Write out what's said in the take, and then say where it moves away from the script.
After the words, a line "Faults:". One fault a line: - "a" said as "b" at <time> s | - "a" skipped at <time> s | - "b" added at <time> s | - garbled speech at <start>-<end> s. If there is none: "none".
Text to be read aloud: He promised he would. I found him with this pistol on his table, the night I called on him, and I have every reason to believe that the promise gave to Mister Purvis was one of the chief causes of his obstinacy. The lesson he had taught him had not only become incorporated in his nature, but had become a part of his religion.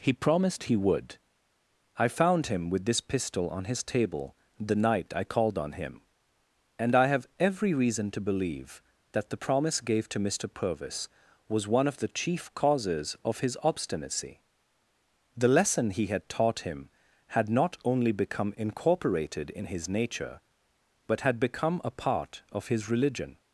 He promised he would. I found him with this pistol on his table, the night I called on him, and I have every reason to believe that the promise gave to Mister Purvis was one of the chief causes of his obstinacy. The lesson he had taught him had not only become incorporated in his nature, but had become a part of his religion.
Faults:
none